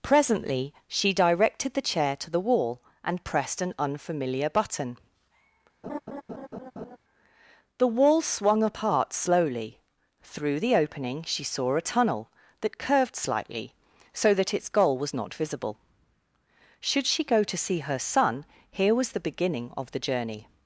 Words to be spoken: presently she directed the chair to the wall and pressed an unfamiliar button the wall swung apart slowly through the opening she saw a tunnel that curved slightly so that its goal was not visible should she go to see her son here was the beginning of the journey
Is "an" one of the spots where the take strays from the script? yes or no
no